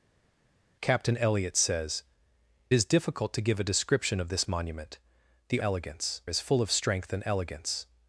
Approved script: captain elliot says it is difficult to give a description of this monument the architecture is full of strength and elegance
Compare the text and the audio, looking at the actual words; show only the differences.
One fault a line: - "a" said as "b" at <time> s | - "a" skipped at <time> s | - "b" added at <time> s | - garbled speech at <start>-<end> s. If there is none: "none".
- "it" skipped at 2.0 s
- "architecture" said as "elegance" at 5.6 s